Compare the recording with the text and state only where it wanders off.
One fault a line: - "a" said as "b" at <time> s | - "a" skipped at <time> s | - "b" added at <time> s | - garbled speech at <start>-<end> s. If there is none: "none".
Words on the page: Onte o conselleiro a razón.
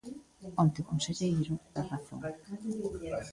none